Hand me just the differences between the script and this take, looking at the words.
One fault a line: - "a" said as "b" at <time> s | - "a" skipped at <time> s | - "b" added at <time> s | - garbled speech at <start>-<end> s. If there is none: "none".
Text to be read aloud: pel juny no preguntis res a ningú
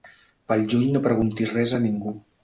none